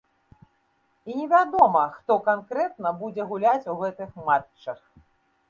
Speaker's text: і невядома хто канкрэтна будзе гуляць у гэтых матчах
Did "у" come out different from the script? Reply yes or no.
no